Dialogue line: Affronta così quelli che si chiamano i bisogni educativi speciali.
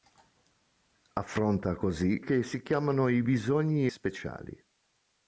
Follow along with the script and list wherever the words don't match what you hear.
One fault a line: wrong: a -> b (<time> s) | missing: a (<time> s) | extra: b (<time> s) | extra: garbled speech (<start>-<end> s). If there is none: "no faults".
missing: quelli (2.2 s)
missing: educativi (3.9 s)